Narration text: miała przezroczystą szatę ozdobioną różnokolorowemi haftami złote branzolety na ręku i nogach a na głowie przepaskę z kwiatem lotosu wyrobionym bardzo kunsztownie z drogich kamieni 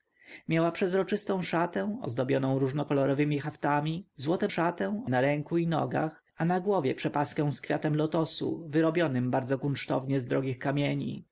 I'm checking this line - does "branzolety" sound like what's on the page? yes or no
no